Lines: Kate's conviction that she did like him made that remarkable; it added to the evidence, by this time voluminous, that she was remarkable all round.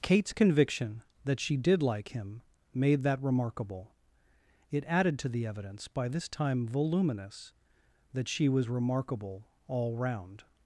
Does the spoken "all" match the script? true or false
true